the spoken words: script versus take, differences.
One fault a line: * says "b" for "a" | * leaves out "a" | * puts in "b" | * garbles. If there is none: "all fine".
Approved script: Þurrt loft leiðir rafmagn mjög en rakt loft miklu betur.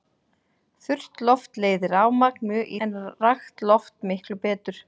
all fine